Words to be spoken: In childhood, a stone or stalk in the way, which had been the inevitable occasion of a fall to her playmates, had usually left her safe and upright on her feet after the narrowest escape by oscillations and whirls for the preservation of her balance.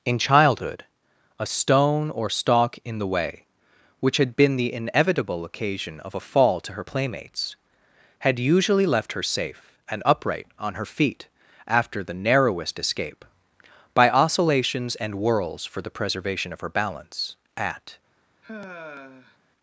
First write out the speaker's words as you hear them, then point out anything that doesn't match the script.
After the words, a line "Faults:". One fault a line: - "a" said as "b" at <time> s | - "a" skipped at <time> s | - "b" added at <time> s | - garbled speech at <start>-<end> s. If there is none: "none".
In childhood, a stone or stalk in the way, which had been the inevitable occasion of a fall to her playmates, had usually left her safe and upright on her feet after the narrowest escape by oscillations and whirls for the preservation of her balance. At
Faults:
- "At" added at 17.5 s